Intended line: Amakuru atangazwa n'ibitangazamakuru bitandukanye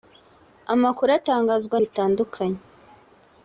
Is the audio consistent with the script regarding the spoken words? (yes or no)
no